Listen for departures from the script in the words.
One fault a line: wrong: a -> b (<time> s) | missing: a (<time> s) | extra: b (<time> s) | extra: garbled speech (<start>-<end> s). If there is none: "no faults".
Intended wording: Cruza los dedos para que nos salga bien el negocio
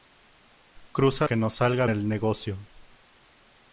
missing: los dedos para (1.3 s)
missing: bien (1.9 s)